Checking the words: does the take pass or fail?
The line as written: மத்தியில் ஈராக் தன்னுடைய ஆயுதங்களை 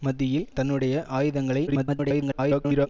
fail